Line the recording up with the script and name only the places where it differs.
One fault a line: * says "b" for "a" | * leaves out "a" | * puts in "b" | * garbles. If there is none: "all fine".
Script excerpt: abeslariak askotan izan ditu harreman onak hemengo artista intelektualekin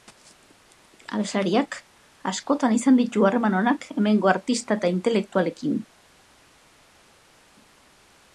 * puts in "eta"